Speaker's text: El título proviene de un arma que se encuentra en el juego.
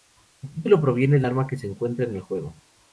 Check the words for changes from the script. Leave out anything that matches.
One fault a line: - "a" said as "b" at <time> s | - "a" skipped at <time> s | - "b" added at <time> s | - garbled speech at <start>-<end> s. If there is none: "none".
- "un" skipped at 1.3 s